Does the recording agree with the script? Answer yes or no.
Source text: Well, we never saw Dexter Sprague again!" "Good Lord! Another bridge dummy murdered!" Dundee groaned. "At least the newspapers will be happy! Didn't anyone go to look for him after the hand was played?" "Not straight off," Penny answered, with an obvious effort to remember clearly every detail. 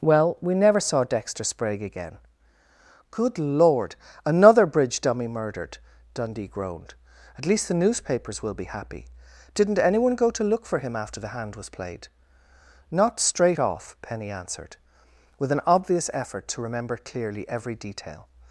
yes